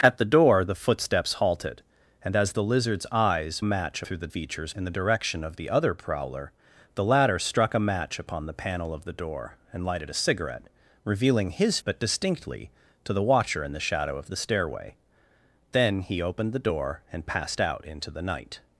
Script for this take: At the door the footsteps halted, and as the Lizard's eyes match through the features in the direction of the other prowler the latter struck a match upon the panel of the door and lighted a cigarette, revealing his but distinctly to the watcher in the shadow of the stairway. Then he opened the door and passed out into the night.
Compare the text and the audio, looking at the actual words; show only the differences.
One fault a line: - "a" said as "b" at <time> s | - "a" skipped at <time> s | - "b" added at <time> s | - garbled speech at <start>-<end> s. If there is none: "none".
none